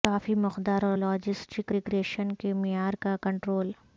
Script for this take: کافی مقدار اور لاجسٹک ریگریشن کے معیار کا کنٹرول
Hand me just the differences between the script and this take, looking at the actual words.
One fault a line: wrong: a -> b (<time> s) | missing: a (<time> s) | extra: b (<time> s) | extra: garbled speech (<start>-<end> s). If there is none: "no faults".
no faults